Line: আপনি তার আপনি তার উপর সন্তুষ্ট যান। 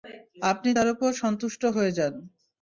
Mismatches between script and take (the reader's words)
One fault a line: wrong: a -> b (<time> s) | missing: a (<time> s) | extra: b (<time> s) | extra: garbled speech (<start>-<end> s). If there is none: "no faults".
missing: আপনি তার (0.9 s)
extra: হয়ে (1.7 s)